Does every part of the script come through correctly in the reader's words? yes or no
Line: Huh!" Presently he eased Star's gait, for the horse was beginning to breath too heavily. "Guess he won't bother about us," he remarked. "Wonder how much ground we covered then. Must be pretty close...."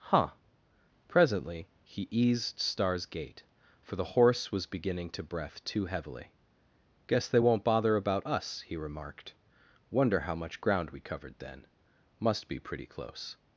no